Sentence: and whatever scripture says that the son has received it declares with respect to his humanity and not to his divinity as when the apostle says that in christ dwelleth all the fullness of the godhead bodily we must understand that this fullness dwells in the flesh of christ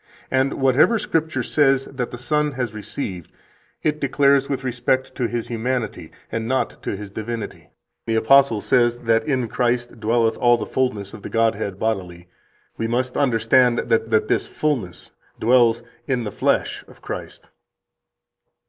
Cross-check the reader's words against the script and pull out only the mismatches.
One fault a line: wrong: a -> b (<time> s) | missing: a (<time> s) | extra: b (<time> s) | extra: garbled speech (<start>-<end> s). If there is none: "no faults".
missing: as when (7.7 s)
extra: that (14.1 s)